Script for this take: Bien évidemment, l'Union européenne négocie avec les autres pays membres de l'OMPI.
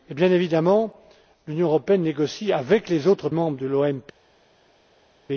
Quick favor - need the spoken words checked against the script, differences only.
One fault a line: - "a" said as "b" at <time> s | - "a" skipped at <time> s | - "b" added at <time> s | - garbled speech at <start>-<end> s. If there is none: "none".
- "pays" skipped at 3.3 s